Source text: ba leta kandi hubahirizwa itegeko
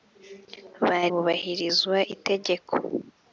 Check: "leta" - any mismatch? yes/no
yes